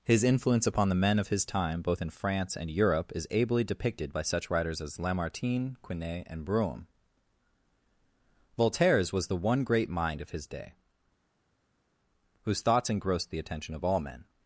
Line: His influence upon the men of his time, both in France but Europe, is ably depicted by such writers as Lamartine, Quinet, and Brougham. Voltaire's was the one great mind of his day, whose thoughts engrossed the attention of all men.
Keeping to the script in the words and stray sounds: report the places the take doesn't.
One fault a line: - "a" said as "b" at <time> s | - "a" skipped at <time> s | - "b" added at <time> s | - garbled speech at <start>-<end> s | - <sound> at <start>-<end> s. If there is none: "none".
- "but" said as "and" at 2.6 s